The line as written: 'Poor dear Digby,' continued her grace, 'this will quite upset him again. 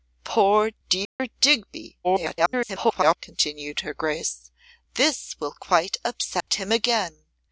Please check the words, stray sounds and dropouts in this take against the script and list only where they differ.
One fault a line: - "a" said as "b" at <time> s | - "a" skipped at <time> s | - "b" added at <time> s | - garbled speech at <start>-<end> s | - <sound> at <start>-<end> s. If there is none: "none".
- dropout at 1.1-1.2 s
- garbled speech at 2.0-3.2 s
- dropout at 6.4-6.5 s